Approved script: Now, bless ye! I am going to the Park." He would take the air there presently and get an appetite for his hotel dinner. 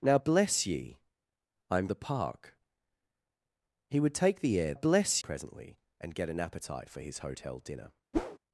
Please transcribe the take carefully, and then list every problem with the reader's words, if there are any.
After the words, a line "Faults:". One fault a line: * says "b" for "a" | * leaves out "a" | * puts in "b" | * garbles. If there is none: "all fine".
Now, bless ye! I am the Park." He would take the air bless presently and get an appetite for his hotel dinner.
Faults:
* leaves out "going to"
* says "bless" for "there"